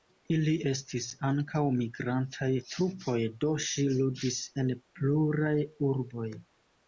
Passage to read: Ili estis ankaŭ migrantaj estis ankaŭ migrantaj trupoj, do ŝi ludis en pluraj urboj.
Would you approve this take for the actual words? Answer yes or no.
no